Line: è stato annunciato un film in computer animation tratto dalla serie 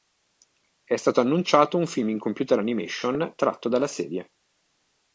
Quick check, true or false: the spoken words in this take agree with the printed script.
true